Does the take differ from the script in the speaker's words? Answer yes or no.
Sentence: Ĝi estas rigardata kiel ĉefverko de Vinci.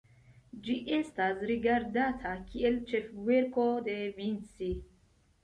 no